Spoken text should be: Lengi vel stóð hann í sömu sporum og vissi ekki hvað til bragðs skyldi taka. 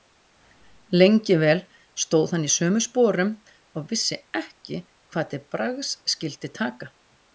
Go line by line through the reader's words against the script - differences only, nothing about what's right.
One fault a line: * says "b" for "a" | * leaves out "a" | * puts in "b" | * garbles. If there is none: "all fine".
all fine